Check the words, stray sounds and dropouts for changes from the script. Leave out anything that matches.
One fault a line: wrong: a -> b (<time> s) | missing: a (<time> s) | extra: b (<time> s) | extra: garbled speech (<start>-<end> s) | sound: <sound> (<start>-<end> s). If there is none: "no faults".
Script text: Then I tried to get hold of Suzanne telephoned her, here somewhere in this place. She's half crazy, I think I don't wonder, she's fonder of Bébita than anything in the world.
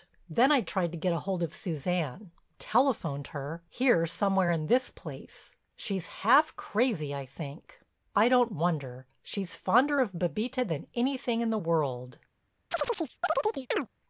sound: chirp (12.7-13.9 s)